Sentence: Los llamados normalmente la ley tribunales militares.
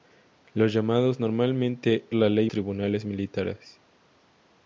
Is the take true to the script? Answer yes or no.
yes